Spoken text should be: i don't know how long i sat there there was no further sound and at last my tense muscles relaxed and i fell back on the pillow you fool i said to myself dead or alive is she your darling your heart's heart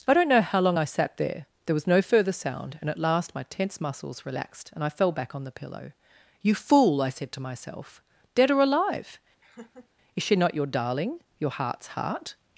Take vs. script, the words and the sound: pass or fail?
fail